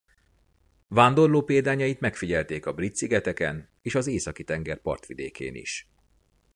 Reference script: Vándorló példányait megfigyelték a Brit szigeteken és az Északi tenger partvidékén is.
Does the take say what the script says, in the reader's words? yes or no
yes